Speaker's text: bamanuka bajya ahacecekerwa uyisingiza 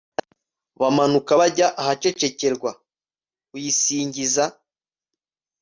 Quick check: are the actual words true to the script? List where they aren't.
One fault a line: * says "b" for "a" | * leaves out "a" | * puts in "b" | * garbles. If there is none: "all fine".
all fine